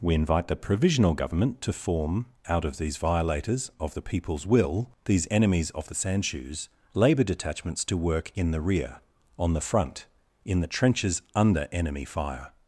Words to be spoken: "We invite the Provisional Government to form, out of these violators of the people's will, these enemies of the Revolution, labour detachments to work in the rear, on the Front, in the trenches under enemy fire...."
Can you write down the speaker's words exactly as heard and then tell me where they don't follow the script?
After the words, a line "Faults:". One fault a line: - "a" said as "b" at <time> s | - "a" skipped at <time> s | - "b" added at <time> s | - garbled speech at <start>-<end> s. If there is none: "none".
"We invite the Provisional Government to form, out of these violators of the people's will, these enemies of the Sandshoes, labour detachments to work in the rear, on the Front, in the trenches under enemy fire...."
Faults:
- "Revolution" said as "Sandshoes" at 6.0 s